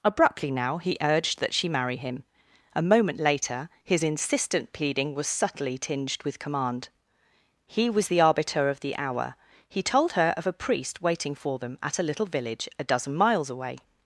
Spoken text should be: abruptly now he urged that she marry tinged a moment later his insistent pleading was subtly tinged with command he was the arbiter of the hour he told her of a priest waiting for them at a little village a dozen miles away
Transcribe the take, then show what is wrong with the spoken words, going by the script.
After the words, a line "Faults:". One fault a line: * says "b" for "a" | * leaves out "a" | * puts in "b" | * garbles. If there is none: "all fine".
abruptly now he urged that she marry him a moment later his insistent pleading was subtly tinged with command he was the arbiter of the hour he told her of a priest waiting for them at a little village a dozen miles away
Faults:
* says "him" for "tinged"